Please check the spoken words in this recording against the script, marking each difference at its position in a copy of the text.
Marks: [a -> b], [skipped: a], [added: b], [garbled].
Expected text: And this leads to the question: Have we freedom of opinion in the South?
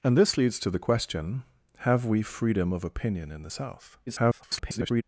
And this leads to the question: Have we freedom of opinion in the South? [garbled]